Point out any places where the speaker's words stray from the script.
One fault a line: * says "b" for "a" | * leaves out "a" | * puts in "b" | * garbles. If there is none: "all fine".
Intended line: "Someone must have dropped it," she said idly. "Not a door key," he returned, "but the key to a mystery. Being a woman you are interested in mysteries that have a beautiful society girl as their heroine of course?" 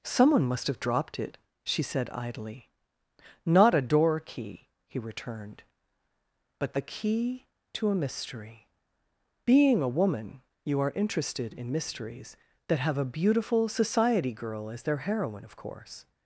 all fine